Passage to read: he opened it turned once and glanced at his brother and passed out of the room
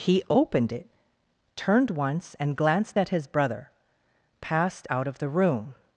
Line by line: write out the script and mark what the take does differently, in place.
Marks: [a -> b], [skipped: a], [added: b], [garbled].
he opened it turned once and glanced at his brother [skipped: and] passed out of the room